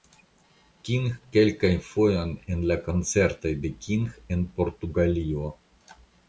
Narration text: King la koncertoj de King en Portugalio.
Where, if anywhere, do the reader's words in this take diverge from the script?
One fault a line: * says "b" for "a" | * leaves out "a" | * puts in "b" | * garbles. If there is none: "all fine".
* puts in "kelkajn fojojn en"